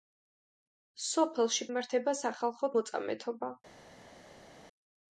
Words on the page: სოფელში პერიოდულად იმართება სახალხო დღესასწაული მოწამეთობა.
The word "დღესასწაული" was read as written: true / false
false